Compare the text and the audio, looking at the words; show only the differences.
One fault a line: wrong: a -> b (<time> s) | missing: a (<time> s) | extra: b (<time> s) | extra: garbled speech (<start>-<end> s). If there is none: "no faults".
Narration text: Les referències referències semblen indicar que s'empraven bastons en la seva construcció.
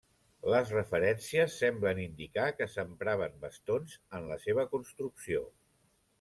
missing: referències (1.6 s)